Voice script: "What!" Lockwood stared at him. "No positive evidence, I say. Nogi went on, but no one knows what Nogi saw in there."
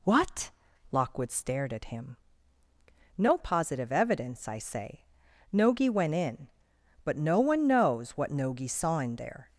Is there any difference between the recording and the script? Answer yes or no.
yes